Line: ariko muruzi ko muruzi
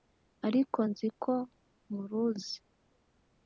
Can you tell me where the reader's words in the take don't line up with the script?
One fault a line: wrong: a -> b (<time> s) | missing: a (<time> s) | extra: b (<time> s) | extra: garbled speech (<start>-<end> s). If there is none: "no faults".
wrong: muruzi -> nzi (0.9 s)